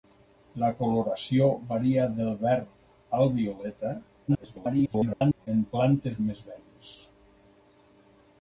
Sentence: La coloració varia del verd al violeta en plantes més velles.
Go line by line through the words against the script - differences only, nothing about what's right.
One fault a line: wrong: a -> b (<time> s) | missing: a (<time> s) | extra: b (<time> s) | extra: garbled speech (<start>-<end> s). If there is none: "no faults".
extra: garbled speech (4.3-5.5 s)